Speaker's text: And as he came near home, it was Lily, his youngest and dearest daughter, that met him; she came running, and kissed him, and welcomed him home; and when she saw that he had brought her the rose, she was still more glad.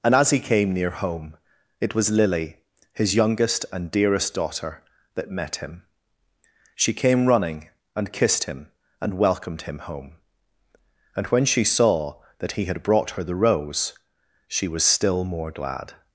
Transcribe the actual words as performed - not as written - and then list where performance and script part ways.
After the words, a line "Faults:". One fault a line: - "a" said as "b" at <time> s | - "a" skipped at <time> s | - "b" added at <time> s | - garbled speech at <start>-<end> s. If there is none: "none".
And as he came near home, it was Lily, his youngest and dearest daughter, that met him; she came running, and kissed him, and welcomed him home; and when she saw that he had brought her the rose, she was still more glad.
Faults:
none